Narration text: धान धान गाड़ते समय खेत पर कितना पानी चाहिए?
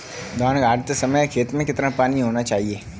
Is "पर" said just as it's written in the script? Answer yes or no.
no